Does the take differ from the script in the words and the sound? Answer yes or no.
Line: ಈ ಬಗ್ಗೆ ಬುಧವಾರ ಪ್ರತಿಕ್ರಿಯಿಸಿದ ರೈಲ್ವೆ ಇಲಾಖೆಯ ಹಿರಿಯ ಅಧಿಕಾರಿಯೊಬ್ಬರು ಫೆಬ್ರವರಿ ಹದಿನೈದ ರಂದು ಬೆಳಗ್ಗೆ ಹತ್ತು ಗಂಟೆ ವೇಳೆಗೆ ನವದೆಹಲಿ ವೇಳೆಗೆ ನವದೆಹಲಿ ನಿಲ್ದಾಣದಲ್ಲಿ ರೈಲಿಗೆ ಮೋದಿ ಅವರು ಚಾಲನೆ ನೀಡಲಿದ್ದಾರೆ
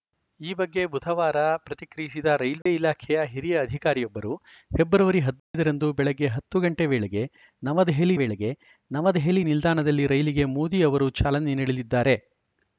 yes